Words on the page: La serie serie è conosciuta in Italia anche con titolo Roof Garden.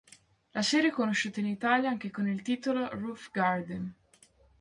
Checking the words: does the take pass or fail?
fail